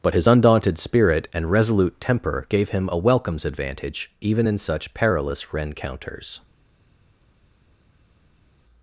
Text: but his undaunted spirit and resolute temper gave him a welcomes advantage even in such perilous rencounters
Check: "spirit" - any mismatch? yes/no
no